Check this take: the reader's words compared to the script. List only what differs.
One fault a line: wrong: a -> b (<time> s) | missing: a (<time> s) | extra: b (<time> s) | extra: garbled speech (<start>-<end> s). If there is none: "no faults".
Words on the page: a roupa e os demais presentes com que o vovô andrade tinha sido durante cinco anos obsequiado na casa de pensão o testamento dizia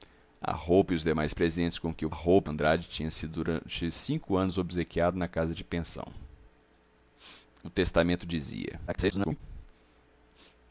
wrong: vovô -> roupa (2.1 s)
extra: garbled speech (8.9-9.4 s)